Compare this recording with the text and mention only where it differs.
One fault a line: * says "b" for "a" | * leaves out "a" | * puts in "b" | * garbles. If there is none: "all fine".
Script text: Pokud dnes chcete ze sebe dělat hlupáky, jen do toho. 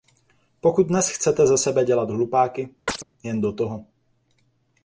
all fine